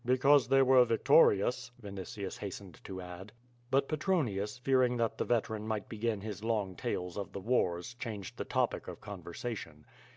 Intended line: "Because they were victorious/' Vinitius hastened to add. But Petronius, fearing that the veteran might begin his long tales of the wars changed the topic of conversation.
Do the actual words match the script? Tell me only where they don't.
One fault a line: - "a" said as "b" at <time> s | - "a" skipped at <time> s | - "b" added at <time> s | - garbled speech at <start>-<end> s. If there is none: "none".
none